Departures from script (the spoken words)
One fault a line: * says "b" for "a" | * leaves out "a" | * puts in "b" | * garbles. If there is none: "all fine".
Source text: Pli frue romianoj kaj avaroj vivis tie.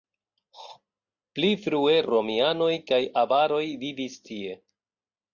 all fine